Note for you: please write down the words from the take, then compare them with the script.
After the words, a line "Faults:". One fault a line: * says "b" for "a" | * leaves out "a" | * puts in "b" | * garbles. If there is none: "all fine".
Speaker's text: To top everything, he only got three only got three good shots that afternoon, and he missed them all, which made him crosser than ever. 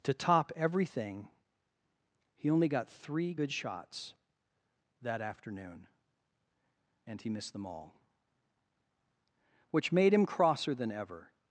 To top everything, he only got three good shots that afternoon, and he missed them all, which made him crosser than ever.
Faults:
* leaves out "only got three"